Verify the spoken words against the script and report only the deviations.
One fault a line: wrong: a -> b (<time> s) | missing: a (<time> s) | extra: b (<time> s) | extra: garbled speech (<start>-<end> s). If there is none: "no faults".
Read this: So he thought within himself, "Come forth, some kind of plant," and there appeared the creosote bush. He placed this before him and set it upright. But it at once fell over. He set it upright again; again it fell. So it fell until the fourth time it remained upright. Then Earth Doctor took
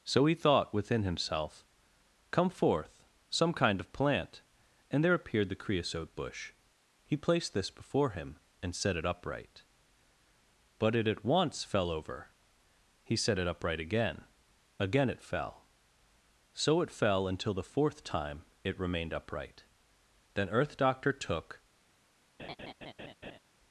no faults